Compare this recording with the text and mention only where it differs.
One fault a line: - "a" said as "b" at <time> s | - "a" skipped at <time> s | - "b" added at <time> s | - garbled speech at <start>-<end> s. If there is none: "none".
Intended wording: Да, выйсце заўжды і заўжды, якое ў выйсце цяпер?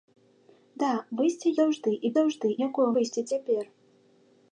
none